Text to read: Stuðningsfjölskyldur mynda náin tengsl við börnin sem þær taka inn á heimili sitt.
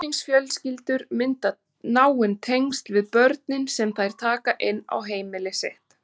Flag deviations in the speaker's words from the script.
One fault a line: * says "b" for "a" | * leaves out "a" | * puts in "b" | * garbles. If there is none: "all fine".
all fine